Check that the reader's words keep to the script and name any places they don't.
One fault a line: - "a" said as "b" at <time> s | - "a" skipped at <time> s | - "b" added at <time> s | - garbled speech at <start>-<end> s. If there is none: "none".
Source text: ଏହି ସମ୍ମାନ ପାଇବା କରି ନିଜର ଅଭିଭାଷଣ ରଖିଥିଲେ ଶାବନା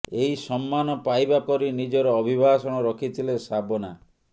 none